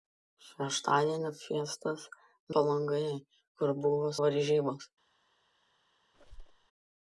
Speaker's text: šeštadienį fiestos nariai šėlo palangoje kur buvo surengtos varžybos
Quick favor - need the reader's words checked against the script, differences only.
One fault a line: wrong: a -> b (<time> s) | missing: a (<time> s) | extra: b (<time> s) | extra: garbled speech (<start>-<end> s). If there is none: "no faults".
missing: nariai šėlo (2.0 s)
missing: surengtos (4.1 s)